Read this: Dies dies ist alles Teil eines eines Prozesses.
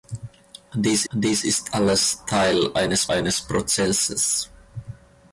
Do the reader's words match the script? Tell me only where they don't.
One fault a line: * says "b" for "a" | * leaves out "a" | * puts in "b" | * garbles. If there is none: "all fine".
all fine